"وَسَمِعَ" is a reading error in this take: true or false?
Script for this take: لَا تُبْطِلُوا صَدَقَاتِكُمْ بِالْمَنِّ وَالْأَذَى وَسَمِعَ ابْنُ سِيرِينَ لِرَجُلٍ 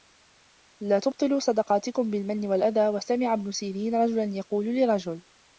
false